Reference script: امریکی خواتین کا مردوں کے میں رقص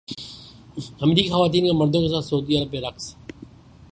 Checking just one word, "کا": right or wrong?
right